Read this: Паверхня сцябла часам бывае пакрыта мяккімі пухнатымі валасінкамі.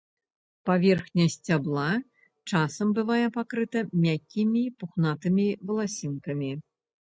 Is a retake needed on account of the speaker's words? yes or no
no